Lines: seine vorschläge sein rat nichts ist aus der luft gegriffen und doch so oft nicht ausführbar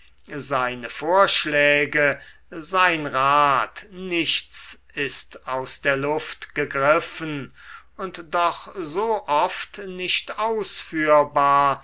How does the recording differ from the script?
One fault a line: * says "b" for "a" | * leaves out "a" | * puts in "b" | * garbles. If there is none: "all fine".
all fine